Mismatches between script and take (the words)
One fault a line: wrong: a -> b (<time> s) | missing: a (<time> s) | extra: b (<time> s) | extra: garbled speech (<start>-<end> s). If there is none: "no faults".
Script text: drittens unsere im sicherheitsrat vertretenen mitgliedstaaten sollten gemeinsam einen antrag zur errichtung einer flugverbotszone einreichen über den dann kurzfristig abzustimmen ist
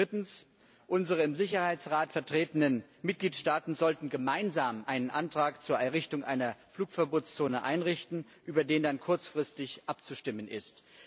no faults